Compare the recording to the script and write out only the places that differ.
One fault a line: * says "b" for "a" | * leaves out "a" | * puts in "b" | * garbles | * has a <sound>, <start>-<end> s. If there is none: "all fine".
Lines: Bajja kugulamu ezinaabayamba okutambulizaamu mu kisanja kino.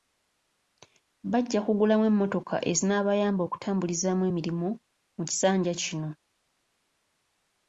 * puts in "emmotoka"
* puts in "emirimu"